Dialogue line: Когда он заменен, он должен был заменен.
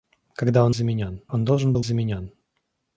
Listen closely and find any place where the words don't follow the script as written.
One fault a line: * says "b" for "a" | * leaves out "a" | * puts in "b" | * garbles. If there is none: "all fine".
all fine